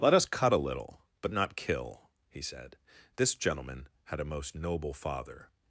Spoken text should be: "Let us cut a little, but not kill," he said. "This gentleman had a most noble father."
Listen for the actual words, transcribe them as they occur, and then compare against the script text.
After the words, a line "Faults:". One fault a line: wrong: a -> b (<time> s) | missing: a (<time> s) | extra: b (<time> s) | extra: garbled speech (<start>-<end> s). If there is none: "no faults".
"Let us cut a little, but not kill," he said. "This gentleman had a most noble father."
Faults:
no faults